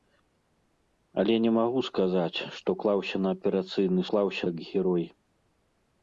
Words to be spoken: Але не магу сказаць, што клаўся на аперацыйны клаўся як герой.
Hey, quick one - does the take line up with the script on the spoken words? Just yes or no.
yes